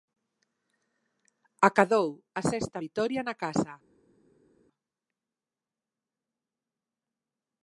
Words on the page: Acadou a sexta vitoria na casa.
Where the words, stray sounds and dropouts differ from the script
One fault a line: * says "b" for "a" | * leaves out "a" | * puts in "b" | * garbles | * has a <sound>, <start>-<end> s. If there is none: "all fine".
all fine